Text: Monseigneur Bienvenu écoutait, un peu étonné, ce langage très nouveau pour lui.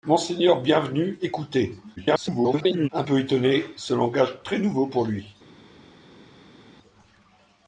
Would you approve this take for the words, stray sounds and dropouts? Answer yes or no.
no